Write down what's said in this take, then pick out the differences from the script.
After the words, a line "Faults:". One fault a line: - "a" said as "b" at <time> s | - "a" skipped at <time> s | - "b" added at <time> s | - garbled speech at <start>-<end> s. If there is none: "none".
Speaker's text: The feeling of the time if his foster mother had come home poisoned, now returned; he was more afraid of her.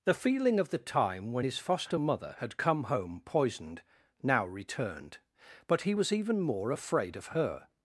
The feeling of the time when his foster mother had come home poisoned, now returned; but he was even more afraid of her.
Faults:
- "if" said as "when" at 1.3 s
- "but" added at 5.7 s
- "even" added at 6.1 s